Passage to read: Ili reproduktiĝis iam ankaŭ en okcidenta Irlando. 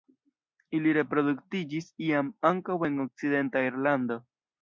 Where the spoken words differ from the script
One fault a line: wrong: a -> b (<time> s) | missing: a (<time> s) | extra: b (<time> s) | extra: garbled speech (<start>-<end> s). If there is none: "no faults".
no faults